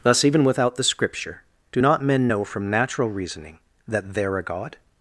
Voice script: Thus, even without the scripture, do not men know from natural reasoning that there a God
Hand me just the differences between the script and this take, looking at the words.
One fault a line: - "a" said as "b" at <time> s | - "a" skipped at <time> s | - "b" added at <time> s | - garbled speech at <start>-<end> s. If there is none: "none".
none